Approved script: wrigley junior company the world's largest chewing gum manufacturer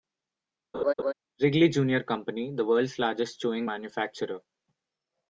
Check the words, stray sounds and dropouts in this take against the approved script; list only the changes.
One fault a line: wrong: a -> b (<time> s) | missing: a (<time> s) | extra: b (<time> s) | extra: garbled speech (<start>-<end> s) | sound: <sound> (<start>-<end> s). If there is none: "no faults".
sound: laugh (0.7-1.1 s)
missing: gum (3.7 s)